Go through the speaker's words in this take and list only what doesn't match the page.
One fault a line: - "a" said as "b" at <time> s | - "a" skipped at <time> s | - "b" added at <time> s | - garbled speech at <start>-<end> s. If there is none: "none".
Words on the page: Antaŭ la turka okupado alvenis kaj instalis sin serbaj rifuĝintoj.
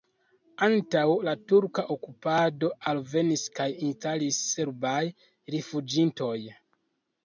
- "sin" skipped at 4.4 s